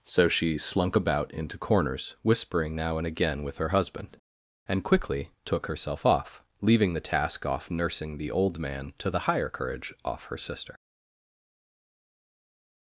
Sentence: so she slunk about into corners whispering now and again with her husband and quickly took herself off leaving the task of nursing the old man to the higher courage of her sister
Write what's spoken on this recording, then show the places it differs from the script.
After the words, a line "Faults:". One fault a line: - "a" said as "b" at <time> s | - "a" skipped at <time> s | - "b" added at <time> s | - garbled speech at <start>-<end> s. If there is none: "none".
so she slunk about into corners whispering now and again with her husband and quickly took herself off leaving the task off nursing the old man to the higher courage off her sister
Faults:
- "of" said as "off" at 7.4 s
- "of" said as "off" at 10.0 s